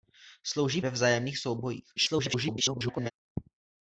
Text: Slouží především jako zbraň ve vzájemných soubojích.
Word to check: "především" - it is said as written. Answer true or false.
false